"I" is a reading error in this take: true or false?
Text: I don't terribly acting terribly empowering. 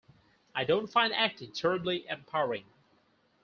false